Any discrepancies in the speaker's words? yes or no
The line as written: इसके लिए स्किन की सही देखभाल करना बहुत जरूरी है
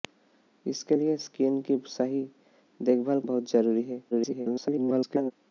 yes